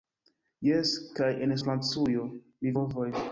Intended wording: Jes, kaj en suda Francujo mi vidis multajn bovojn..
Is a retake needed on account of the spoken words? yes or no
yes